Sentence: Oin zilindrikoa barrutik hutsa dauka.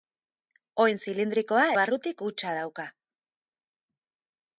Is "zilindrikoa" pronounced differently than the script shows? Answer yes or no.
no